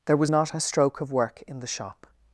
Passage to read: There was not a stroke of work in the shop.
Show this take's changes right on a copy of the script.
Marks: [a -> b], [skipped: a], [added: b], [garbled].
There was not a stroke of work in the shop.